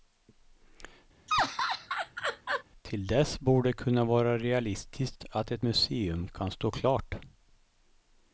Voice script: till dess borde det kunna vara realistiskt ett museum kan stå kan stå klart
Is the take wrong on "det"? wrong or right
right